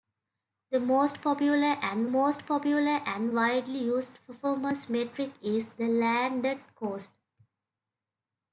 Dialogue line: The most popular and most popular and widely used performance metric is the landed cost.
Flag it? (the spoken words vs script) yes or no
no